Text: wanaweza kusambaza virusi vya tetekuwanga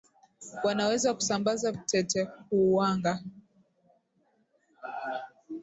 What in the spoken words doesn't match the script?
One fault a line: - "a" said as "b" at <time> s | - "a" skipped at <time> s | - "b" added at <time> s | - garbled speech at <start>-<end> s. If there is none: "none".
- "virusi vya" skipped at 1.7 s